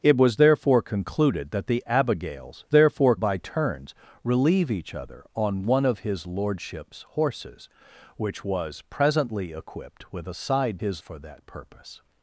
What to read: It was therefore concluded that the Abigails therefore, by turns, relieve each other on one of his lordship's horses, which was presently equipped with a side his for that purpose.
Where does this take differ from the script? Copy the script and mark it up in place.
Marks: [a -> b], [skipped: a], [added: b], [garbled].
It was therefore concluded that the Abigails therefore, by turns, relieve each other on one of his lordship's horses, which was presently equipped with a side his for that purpose.